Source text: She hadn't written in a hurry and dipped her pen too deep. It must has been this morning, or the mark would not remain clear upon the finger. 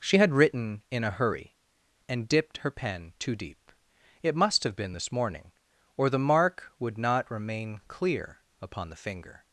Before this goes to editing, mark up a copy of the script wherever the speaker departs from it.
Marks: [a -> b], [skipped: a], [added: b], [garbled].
She [hadn't -> had] written in a hurry and dipped her pen too deep. It must [has -> have] been this morning, or the mark would not remain clear upon the finger.